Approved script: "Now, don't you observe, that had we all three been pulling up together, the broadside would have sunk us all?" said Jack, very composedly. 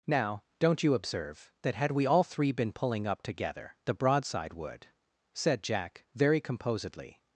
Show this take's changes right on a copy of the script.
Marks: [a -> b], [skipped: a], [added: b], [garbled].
"Now, don't you observe, that had we all three been pulling up together, the broadside would [skipped: have sunk us all?"] said Jack, very composedly.